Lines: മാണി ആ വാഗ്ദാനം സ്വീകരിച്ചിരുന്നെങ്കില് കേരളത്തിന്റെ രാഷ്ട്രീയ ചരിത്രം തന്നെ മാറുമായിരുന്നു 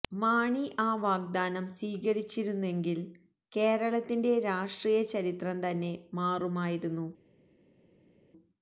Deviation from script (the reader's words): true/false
false